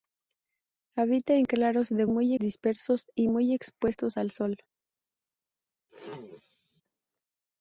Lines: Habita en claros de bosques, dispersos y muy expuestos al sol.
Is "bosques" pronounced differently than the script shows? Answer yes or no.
yes